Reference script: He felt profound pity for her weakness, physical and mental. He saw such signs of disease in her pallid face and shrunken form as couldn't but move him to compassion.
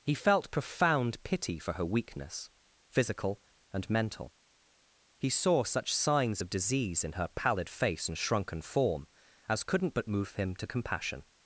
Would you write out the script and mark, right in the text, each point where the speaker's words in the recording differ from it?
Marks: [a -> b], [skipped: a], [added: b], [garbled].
He felt profound pity for her weakness, physical and mental. He saw such signs of disease in her pallid face and shrunken form as couldn't but move him to compassion.